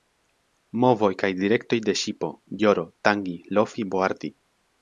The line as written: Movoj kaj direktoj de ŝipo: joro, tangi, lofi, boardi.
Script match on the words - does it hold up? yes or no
yes